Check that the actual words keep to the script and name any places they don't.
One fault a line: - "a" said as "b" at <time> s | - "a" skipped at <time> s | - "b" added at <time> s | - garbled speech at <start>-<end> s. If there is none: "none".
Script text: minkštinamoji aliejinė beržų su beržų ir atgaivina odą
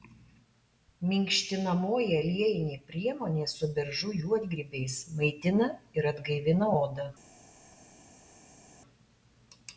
- "beržų" said as "priemonė" at 2.9 s
- "juodgrybiais maitina" added at 4.2 s